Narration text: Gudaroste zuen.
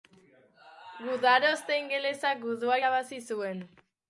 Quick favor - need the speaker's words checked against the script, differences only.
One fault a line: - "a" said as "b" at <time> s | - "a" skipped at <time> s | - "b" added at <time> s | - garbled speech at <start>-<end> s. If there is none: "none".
- "ingelesak gudua irabazi" added at 1.8 s